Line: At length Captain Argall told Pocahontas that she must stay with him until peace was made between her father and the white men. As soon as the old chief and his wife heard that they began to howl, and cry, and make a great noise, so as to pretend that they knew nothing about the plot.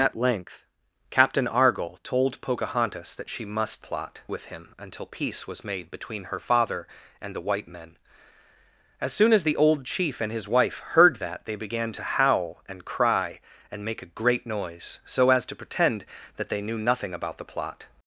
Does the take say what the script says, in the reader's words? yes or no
no